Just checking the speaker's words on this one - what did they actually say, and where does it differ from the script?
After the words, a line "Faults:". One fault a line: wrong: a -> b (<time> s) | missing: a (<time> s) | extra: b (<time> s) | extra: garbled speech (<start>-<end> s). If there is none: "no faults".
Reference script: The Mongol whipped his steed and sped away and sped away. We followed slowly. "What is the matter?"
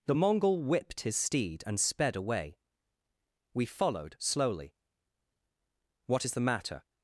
The Mongol whipped his steed and sped away. We followed slowly. "What is the matter?"
Faults:
missing: and sped away (2.6 s)